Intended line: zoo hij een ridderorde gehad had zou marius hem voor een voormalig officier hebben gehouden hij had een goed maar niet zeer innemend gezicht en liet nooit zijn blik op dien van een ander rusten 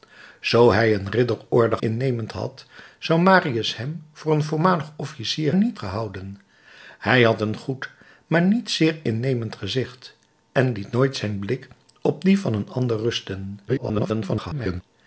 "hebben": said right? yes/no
no